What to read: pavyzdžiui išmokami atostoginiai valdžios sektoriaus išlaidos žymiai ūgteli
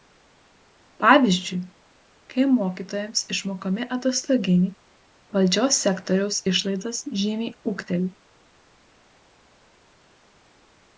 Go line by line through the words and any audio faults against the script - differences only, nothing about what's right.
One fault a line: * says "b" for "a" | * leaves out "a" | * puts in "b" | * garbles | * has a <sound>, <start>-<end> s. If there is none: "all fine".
* puts in "kai mokytojams"